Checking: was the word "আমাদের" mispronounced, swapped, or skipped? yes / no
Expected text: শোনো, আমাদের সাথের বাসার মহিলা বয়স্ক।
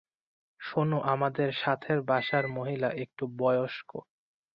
no